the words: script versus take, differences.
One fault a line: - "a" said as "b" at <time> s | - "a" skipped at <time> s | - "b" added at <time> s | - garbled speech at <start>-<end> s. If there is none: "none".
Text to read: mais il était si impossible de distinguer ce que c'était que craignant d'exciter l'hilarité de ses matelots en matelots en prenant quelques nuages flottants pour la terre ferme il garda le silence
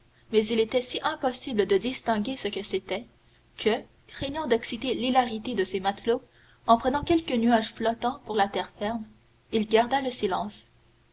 - "matelots en" skipped at 6.8 s